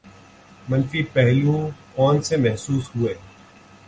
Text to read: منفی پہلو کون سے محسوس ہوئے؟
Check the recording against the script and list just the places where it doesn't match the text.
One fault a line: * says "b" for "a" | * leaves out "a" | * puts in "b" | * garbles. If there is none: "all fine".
all fine